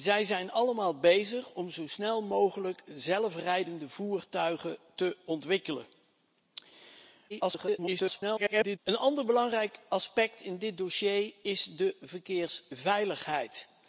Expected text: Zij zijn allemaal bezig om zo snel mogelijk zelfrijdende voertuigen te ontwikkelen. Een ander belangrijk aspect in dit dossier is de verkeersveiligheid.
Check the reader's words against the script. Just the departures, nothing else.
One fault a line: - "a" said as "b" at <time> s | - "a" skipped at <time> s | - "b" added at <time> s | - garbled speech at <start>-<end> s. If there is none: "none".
- garbled speech at 7.3-8.8 s